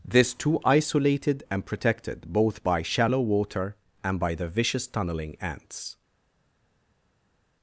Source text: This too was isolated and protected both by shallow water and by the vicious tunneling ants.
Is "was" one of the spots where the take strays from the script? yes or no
yes